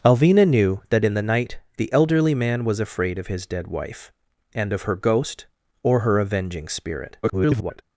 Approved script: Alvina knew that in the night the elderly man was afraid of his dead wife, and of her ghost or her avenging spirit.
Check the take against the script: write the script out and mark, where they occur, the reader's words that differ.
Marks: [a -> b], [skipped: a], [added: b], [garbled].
Alvina knew that in the night the elderly man was afraid of his dead wife, and of her ghost or her avenging spirit. [garbled]